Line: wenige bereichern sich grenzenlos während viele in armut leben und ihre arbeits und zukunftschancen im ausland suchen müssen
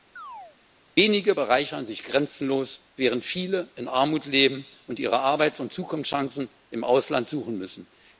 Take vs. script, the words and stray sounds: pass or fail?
fail